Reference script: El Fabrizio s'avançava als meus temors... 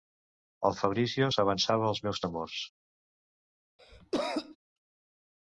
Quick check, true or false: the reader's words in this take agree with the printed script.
true